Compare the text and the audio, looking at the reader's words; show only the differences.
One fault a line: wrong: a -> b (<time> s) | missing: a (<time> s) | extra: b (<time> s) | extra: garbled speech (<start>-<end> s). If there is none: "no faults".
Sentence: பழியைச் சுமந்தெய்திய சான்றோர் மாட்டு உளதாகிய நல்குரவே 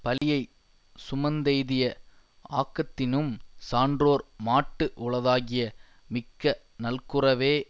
extra: ஆக்கத்தினும் (2.5 s)
extra: மிக்க (6.1 s)